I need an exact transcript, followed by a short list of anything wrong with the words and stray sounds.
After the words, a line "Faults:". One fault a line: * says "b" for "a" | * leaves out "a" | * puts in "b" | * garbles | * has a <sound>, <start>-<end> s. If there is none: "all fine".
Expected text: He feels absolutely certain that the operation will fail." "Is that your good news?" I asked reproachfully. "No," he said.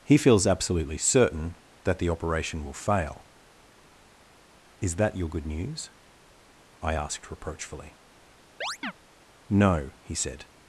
He feels absolutely certain that the operation will fail." "Is that your good news?" I asked reproachfully. "No," he said.
Faults:
* has a chirp, 8.6-8.9 s